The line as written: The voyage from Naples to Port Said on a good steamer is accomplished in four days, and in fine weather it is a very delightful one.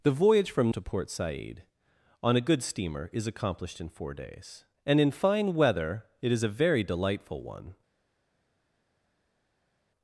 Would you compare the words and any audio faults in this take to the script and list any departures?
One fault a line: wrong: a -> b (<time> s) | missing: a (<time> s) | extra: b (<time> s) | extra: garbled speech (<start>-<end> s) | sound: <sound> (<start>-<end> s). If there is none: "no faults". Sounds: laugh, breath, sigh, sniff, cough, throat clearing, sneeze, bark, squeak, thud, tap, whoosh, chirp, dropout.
missing: Naples (0.7 s)